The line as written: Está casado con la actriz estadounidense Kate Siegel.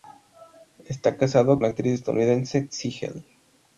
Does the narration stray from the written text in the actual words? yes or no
yes